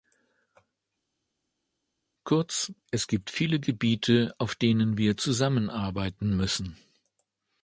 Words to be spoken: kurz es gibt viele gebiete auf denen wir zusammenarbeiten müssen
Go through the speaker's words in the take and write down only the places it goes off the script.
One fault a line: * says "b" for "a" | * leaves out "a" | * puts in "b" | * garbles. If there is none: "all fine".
all fine